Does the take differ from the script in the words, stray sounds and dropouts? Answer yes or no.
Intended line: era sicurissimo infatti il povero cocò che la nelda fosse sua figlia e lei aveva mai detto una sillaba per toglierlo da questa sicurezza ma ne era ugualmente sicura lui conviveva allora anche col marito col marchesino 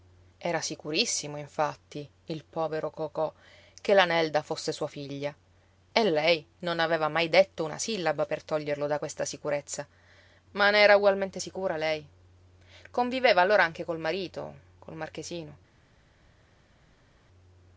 yes